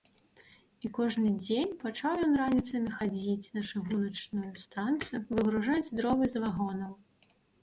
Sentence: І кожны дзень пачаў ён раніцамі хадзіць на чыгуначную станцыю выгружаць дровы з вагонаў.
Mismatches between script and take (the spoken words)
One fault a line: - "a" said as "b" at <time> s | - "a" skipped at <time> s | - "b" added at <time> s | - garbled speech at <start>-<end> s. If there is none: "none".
none